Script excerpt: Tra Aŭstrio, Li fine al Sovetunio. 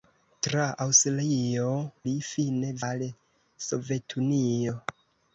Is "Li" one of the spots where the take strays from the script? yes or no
no